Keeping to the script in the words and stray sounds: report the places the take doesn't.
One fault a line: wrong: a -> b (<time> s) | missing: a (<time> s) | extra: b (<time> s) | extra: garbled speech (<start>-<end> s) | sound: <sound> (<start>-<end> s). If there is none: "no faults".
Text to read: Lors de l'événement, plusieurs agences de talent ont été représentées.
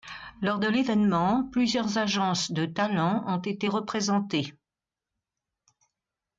no faults